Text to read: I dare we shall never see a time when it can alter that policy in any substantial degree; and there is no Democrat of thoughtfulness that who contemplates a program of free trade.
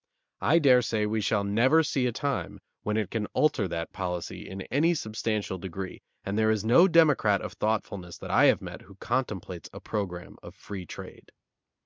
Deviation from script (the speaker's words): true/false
true